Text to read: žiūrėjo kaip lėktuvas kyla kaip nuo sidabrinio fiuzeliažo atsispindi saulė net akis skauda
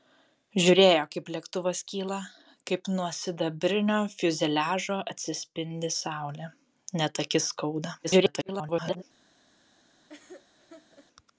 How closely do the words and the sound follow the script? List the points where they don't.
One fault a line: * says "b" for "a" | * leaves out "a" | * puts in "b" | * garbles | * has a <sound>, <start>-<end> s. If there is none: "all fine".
* garbles
* has a laugh, 10.1-11.1 s